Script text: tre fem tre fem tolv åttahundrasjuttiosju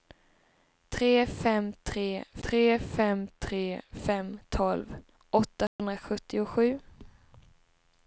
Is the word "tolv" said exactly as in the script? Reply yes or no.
yes